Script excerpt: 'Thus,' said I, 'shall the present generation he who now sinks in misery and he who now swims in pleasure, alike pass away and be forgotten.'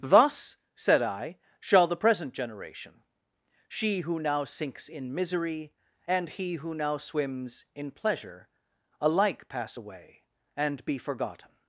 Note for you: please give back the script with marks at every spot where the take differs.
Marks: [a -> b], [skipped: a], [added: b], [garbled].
'Thus,' said I, 'shall the present generation [he -> she] who now sinks in misery and he who now swims in pleasure, alike pass away and be forgotten.'